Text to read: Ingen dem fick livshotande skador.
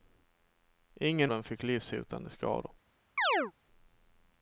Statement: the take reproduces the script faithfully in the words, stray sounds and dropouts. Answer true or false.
false